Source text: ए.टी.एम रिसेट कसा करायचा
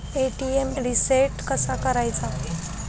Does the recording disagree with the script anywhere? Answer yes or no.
no